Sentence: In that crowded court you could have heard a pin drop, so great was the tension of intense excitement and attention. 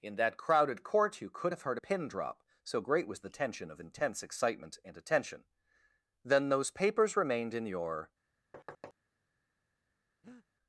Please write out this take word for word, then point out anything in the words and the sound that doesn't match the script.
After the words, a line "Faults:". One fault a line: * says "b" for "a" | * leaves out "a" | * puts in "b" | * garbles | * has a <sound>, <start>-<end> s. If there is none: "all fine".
In that crowded court you could have heard a pin drop, so great was the tension of intense excitement and attention. "Then those papers remained in your
Faults:
* puts in "Then those papers remained in your"
* has a thud, 8.5-8.9 s
* has a breath, 10.2-10.5 s